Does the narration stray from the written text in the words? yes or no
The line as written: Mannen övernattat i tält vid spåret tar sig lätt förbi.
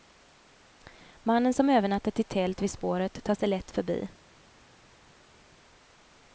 yes